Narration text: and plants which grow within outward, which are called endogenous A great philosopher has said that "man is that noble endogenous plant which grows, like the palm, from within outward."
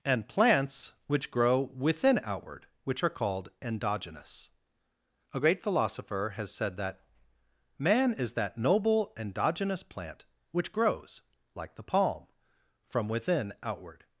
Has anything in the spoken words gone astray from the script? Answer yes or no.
no